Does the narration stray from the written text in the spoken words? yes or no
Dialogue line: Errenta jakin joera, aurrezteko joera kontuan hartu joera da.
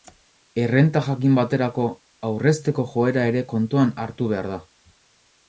yes